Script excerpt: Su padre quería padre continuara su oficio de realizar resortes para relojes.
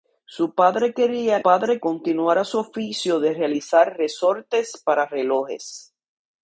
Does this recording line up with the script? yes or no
yes